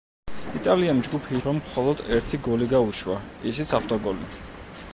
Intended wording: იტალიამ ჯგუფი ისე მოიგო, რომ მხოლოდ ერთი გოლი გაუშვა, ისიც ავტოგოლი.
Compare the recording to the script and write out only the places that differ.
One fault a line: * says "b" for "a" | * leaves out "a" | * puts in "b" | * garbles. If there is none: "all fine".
* leaves out "ისე მოიგო"